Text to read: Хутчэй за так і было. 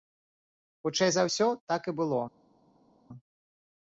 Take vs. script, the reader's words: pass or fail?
fail